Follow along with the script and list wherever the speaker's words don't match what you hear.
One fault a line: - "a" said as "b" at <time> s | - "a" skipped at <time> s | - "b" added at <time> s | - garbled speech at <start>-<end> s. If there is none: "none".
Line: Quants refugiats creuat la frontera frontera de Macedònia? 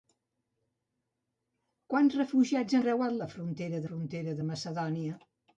none